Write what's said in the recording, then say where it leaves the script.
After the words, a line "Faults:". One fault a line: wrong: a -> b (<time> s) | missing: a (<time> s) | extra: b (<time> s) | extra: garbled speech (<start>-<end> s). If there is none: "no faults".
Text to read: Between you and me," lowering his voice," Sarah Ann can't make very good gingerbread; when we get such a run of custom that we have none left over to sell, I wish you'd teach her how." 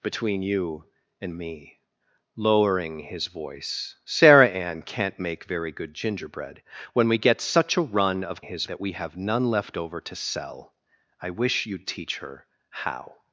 Between you and me," lowering his voice," Sarah Ann can't make very good gingerbread; when we get such a run of his that we have none left over to sell, I wish you'd teach her how."
Faults:
wrong: custom -> his (8.4 s)